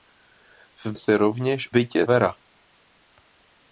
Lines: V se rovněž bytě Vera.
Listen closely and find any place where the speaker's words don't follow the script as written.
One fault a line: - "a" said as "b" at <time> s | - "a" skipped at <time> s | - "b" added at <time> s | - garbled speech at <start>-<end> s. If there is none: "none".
none